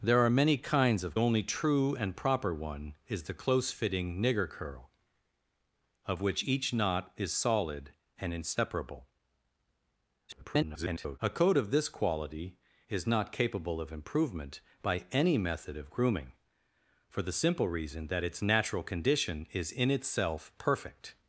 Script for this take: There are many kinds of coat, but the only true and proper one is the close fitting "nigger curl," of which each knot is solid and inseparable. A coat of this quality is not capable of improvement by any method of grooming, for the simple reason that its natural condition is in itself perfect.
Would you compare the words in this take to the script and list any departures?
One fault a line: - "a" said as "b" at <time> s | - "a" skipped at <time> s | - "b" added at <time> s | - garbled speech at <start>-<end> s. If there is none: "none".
- "coat but the" skipped at 1.2 s
- garbled speech at 10.3-11.2 s